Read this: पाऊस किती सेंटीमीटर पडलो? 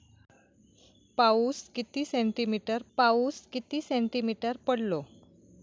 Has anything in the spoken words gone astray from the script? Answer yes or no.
yes